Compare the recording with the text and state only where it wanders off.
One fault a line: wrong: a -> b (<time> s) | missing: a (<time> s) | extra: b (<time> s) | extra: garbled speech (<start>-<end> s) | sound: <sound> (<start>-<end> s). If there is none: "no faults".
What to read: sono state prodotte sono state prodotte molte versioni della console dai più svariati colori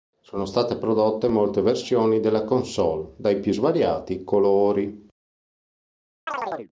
missing: sono state prodotte (1.3 s)
sound: chirp (6.3-6.7 s)